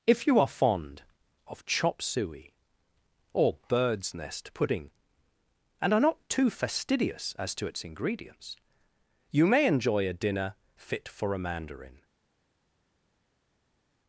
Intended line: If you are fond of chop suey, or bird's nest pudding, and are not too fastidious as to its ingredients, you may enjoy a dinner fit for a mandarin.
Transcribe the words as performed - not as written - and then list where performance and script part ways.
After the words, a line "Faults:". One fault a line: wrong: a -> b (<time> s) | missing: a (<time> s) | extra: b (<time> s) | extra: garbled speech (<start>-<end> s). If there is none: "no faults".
If you are fond of chop suey, or bird's nest pudding, and are not too fastidious as to its ingredients, you may enjoy a dinner fit for a mandarin.
Faults:
no faults